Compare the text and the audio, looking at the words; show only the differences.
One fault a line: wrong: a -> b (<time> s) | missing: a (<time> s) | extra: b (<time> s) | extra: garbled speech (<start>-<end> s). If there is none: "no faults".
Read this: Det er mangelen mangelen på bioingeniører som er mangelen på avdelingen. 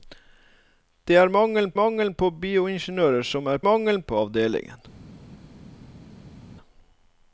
no faults